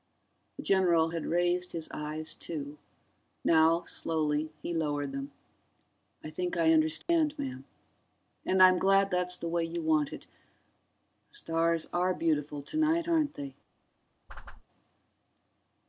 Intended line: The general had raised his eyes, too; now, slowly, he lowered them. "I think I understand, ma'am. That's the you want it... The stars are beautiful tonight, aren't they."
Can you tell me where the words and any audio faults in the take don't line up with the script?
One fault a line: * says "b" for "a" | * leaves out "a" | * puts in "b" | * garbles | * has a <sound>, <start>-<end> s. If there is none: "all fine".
* has a dropout, 7.0-7.1 s
* puts in "And I'm glad"
* puts in "way"
* has a whoosh, 14.3-14.6 s